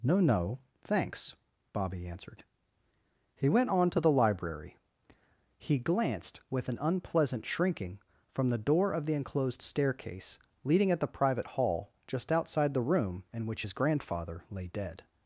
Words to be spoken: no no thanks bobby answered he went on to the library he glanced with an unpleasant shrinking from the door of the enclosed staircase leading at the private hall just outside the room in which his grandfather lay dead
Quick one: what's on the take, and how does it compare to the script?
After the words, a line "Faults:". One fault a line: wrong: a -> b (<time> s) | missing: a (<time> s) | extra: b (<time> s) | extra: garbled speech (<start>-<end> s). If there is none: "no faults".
no no thanks bobby answered he went on to the library he glanced with an unpleasant shrinking from the door of the enclosed staircase leading at the private hall just outside the room in which his grandfather lay dead
Faults:
no faults